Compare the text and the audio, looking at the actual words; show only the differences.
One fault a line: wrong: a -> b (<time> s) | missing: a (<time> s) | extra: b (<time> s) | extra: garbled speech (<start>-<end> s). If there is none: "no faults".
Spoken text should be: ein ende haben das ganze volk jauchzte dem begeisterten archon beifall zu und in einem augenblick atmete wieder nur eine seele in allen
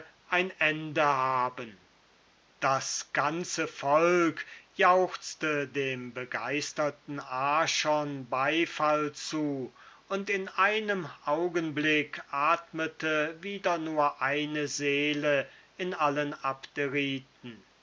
no faults